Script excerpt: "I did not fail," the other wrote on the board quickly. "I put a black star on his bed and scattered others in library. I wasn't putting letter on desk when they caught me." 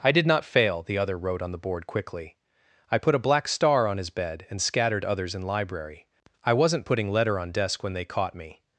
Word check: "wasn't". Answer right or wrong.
right